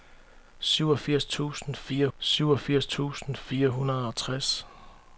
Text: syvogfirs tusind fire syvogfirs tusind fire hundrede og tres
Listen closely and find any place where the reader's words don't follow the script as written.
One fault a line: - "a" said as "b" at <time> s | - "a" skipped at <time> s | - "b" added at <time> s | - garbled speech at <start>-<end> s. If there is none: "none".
none